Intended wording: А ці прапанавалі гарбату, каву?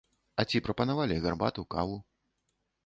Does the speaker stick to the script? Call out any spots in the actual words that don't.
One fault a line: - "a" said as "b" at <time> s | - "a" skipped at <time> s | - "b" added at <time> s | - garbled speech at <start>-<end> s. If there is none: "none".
none